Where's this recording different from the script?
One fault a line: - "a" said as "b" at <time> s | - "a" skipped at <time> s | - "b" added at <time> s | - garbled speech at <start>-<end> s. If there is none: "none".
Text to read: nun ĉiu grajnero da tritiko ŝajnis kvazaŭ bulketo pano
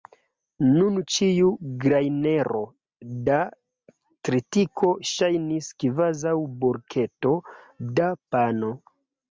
- "da" added at 8.0 s